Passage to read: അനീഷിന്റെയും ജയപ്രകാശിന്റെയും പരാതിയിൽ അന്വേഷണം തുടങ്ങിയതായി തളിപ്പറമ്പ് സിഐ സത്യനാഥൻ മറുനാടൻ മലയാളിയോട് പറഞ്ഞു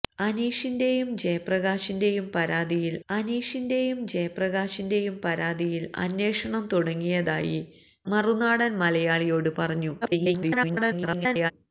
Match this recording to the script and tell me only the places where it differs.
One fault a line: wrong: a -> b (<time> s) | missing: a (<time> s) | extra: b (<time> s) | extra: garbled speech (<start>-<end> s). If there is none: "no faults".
wrong: അന്വേഷണം തുടങ്ങിയതായി തളിപ്പറമ്പ് സിഐ സത്യനാഥൻ -> അനീഷിന്റെയും ജയപ്രകാശിന്റെയും പരാതിയിൽ അന്വേഷണം തുടങ്ങിയതായി (3.1 s)
extra: garbled speech (10.0-11.5 s)